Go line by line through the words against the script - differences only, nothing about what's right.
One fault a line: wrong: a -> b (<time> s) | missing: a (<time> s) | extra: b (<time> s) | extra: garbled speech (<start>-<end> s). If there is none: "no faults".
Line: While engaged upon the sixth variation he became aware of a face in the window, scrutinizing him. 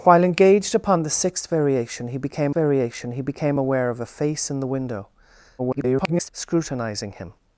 extra: variation he became (2.5 s)
extra: garbled speech (5.6-6.3 s)